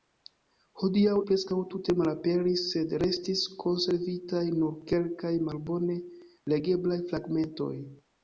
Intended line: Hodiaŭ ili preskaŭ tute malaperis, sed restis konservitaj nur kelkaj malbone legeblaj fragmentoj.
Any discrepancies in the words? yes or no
yes